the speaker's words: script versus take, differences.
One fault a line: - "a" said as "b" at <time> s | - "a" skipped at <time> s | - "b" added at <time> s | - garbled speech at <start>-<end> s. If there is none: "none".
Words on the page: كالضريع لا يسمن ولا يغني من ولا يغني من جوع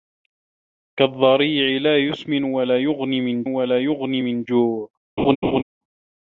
none